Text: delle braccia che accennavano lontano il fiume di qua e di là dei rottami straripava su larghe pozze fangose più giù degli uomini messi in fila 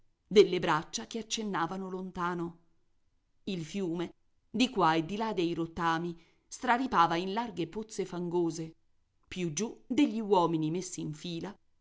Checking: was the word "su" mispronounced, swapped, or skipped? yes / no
yes